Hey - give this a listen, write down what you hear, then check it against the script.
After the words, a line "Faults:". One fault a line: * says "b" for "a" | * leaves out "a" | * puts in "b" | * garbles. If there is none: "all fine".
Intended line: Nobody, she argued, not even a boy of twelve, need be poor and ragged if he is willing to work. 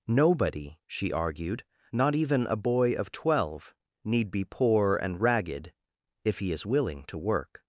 Nobody, she argued, not even a boy of twelve, need be poor and ragged if he is willing to work.
Faults:
all fine